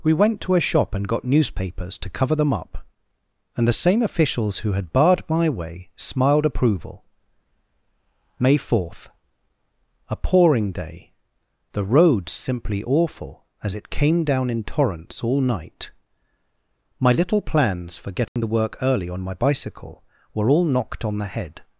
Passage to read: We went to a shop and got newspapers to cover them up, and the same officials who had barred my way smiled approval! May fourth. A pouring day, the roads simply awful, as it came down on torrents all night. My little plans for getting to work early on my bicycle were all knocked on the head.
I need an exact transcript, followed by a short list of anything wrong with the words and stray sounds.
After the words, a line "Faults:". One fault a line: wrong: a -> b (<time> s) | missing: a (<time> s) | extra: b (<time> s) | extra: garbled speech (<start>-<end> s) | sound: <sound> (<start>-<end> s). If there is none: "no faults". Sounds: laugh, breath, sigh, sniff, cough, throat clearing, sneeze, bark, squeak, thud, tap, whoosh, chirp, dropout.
We went to a shop and got newspapers to cover them up, and the same officials who had barred my way smiled approval! May fourth. A pouring day, the roads simply awful, as it came down in torrents all night. My little plans for getting to work early on my bicycle were all knocked on the head.
Faults:
wrong: on -> in (14.5 s)
sound: dropout (18.3-18.4 s)